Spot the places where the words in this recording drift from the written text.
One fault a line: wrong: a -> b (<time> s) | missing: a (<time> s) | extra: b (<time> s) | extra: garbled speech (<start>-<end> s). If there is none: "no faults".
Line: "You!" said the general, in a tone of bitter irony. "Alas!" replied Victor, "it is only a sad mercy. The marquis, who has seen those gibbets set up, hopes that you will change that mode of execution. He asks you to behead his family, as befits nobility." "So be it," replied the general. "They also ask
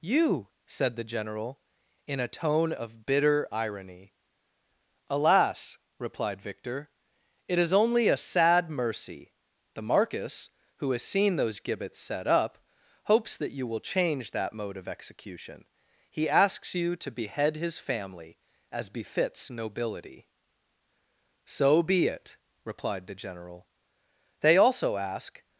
no faults